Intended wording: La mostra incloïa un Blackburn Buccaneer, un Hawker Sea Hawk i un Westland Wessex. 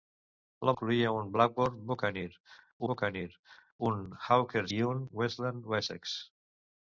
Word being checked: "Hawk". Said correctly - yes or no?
no